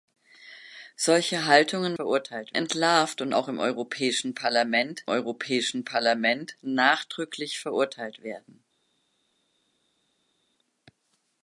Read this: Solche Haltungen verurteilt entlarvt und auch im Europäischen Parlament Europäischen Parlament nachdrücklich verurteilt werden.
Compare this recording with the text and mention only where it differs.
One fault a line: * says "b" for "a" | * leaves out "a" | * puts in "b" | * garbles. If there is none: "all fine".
all fine